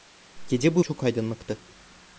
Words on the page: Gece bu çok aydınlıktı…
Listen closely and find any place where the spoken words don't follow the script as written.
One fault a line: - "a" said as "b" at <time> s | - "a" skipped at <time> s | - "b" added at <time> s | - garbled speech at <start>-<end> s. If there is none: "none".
none